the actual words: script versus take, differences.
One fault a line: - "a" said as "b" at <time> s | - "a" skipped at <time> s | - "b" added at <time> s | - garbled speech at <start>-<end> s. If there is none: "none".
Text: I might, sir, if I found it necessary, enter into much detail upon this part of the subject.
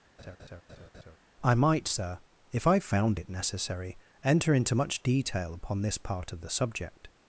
none